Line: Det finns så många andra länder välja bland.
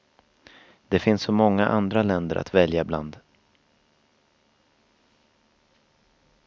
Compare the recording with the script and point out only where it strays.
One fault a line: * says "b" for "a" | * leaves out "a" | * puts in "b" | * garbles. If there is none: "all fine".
* puts in "att"